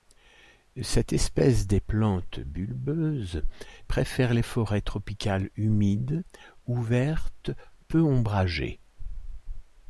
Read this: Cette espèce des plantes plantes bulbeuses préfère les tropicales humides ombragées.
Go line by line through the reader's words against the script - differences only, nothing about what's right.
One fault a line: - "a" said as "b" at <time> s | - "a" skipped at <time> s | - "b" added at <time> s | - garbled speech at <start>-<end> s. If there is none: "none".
- "plantes" skipped at 2.4 s
- "forêts" added at 4.4 s
- "ouvertes peu" added at 6.7 s